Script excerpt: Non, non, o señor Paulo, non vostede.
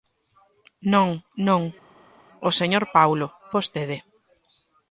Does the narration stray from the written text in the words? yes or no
yes